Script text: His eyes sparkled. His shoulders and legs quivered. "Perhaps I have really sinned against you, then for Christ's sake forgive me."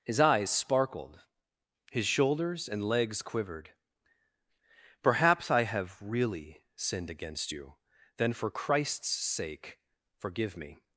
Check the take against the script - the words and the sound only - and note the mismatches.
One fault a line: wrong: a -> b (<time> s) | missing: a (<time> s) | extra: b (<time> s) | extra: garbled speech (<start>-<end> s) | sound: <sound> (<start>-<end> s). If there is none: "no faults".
no faults